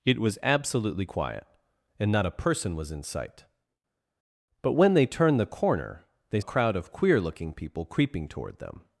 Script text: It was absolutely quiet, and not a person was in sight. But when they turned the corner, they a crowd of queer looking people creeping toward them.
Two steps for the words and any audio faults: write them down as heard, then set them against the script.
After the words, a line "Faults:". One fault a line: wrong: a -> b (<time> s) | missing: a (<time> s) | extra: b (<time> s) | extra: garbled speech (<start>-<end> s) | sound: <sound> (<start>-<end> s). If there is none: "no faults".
It was absolutely quiet, and not a person was in sight. But when they turned the corner, they a crowd of queer looking people creeping toward them.
Faults:
no faults